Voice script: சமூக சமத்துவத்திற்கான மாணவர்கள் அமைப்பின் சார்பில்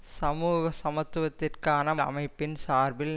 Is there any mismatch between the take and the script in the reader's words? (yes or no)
yes